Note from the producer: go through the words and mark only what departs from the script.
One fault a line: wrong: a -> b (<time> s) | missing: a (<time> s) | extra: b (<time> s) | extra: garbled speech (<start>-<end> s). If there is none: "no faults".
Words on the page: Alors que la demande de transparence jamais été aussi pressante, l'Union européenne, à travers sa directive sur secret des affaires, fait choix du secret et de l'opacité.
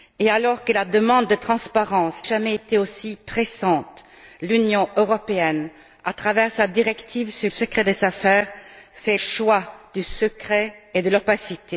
no faults